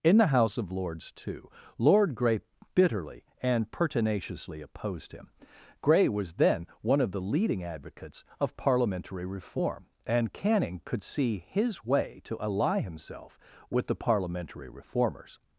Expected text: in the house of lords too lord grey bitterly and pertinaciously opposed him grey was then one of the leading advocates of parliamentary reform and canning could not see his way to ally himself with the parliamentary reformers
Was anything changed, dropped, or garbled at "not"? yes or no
yes